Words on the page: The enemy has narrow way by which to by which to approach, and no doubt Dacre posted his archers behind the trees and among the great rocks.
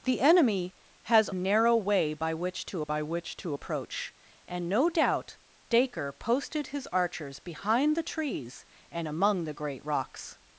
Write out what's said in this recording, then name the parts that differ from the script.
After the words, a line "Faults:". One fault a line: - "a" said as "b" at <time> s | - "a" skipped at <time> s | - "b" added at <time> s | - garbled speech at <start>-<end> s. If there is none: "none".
The enemy has narrow way by which to by which to approach, and no doubt Dacre posted his archers behind the trees and among the great rocks.
Faults:
none